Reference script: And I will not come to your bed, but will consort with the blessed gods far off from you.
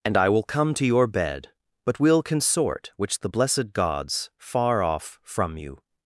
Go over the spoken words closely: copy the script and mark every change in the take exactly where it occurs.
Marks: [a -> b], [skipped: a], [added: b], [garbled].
And I will [skipped: not] come to your bed, but will consort [with -> which] the blessed gods far off from you.